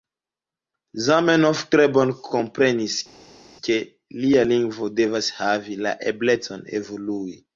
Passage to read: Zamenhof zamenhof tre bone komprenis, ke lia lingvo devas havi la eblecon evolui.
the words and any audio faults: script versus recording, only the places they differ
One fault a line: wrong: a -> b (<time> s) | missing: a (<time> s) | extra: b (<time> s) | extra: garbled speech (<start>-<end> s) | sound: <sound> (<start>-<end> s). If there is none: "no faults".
missing: zamenhof (1.6 s)